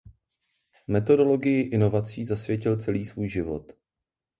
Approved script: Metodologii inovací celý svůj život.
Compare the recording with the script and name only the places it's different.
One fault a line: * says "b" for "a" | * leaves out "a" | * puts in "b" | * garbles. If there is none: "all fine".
* puts in "zasvětil"